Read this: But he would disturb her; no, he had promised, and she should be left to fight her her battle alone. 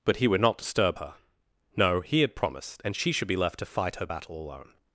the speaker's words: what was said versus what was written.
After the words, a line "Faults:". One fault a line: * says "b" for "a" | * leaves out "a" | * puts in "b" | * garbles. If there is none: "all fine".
But he would not disturb her; no, he had promised, and she should be left to fight her battle alone.
Faults:
* puts in "not"
* leaves out "her"